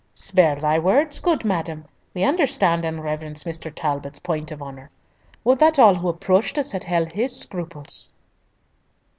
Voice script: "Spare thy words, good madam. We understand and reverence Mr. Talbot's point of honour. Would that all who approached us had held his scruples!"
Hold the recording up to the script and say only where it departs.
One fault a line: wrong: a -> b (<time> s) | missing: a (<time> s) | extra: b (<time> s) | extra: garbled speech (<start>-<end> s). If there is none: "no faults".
no faults